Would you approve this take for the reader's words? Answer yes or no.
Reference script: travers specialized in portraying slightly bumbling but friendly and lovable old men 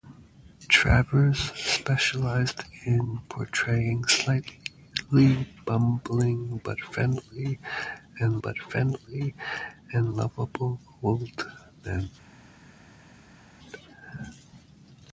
no